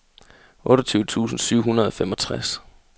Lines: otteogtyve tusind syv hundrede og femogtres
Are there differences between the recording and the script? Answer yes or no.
no